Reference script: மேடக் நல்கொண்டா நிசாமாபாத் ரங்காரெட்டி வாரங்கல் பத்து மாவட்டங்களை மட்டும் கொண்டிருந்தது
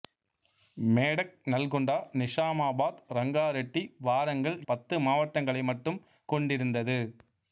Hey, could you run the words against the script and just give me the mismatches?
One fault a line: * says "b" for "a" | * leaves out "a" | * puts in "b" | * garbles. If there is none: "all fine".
all fine